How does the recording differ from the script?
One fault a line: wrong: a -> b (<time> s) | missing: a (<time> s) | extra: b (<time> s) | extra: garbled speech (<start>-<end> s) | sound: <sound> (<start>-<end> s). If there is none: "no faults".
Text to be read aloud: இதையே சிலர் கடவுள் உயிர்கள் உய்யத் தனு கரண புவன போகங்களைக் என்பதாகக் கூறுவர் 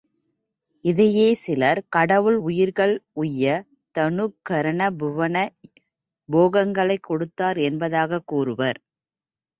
extra: கொடுத்தார் (7.0 s)